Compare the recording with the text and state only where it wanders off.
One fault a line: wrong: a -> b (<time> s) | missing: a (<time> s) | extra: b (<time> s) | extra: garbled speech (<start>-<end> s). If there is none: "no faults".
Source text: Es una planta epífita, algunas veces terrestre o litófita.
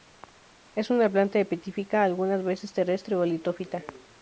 no faults